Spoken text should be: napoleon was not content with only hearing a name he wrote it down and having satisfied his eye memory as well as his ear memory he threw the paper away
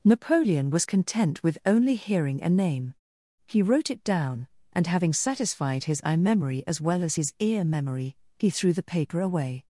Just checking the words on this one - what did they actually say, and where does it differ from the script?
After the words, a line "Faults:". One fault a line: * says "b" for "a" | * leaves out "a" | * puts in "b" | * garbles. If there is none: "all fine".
napoleon was content with only hearing a name he wrote it down and having satisfied his eye memory as well as his ear memory he threw the paper away
Faults:
* leaves out "not"